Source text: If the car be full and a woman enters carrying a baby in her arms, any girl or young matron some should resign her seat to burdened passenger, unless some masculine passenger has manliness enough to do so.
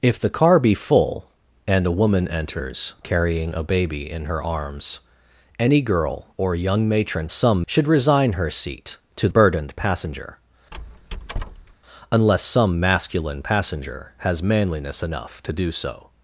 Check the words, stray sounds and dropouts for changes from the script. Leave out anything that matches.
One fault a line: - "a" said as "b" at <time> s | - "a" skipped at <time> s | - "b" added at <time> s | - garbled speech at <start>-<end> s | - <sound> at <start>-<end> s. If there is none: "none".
- squeak at 10.7-11.7 s